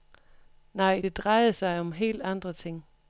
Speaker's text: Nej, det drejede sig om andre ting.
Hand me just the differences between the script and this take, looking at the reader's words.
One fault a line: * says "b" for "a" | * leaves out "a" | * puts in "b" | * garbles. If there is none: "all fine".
* puts in "helt"